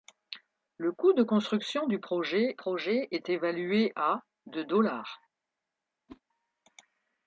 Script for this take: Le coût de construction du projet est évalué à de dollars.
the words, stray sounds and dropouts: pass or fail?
fail